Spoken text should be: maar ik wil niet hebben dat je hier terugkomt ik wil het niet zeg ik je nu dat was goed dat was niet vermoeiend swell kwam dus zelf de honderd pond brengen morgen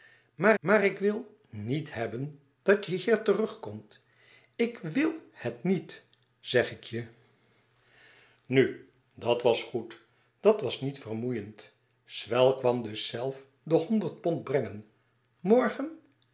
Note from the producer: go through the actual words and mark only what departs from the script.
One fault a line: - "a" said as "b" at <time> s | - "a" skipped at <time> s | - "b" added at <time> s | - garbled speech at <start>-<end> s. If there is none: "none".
- "maar" added at 0.6 s